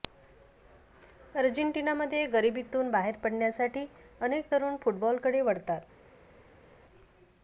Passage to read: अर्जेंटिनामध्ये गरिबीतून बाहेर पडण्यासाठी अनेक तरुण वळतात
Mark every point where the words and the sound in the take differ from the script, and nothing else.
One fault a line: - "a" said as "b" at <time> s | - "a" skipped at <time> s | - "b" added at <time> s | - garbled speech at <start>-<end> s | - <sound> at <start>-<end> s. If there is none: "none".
- "फुटबॉलकडे" added at 4.8 s